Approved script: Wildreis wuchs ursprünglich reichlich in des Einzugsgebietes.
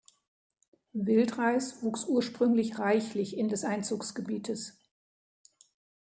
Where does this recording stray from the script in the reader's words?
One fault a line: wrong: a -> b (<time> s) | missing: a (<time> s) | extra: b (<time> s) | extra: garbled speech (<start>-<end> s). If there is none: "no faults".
no faults